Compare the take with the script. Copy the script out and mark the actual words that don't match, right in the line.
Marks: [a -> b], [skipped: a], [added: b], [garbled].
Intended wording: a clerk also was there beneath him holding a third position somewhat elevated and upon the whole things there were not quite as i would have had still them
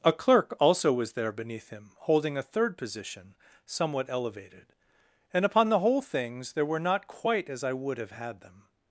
a clerk also was there beneath him holding a third position somewhat elevated and upon the whole things there were not quite as i would have had [skipped: still] them